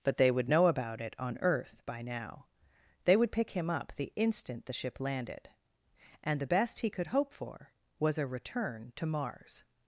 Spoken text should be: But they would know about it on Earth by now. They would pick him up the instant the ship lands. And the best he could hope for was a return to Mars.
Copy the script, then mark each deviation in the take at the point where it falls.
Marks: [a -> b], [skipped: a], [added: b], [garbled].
But they would know about it on Earth by now. They would pick him up the instant the ship [lands. -> landed] And the best he could hope for was a return to Mars.